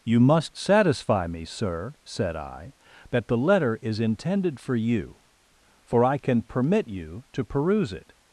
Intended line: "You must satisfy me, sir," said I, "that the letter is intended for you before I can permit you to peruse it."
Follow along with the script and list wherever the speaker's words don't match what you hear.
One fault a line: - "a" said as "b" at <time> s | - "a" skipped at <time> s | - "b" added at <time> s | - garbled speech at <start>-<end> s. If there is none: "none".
- "before" said as "for" at 5.9 s